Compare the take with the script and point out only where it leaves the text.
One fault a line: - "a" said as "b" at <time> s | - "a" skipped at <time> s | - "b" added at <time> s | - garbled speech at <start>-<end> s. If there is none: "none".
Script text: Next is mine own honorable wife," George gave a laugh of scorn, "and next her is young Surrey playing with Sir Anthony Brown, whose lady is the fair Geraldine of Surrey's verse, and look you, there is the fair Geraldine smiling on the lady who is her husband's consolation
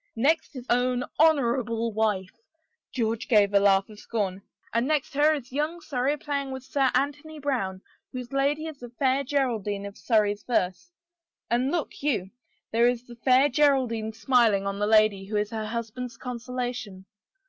- "mine" skipped at 0.7 s